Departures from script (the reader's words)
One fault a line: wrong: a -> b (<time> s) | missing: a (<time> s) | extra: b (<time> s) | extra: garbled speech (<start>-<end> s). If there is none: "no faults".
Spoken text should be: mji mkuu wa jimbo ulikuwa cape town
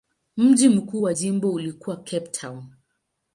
no faults